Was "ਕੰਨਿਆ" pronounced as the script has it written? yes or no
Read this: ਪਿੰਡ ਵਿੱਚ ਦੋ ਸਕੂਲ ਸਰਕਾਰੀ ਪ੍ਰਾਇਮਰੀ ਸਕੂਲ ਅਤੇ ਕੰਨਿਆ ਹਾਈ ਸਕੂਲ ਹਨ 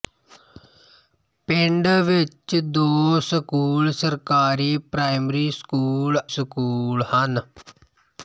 no